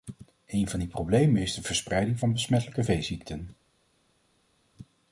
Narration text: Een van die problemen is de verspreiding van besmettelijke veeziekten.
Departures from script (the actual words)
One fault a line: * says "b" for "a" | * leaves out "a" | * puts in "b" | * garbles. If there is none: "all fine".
all fine